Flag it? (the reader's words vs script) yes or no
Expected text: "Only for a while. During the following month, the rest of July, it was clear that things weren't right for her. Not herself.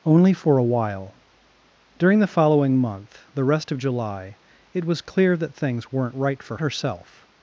yes